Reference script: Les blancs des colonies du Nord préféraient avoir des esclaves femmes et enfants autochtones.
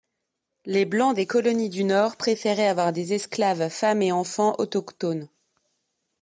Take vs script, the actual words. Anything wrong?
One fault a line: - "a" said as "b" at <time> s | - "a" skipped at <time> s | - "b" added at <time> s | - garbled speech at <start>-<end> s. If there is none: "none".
none